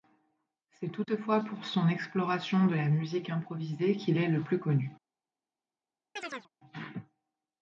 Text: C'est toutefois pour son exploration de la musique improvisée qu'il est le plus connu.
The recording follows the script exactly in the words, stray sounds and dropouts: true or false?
false